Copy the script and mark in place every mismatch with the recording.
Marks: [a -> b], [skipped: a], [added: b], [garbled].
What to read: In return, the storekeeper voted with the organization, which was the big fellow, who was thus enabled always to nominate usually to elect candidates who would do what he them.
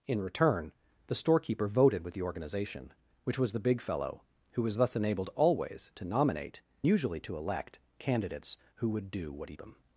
In return, the storekeeper voted with the organization, which was the big fellow, who was thus enabled always to nominate usually to elect candidates who would do what he them.